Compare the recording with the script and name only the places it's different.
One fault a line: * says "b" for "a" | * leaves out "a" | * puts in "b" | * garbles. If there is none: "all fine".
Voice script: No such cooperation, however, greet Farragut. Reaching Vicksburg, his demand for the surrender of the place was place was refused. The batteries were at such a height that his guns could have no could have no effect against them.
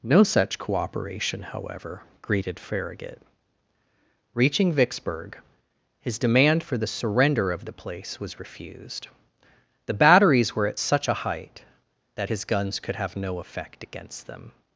* says "greeted" for "greet"
* leaves out "place was"
* leaves out "could have no"